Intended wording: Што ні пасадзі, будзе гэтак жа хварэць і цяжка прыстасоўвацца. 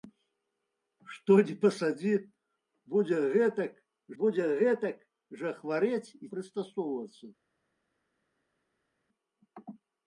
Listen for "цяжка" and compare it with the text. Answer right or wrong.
wrong